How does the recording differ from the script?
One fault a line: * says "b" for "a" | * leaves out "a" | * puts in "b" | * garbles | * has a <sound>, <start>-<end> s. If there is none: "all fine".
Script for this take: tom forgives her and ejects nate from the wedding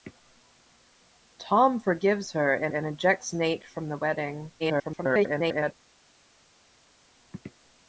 * puts in "and"
* garbles